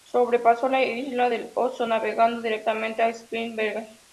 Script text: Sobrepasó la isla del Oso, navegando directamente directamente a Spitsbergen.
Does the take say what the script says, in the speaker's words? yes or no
no